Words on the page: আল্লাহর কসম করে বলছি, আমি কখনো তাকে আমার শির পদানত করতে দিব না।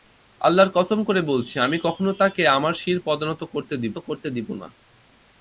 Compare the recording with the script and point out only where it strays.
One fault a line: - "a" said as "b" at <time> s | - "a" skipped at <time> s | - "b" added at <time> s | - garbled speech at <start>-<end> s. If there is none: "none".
- "করতে দিব" added at 4.0 s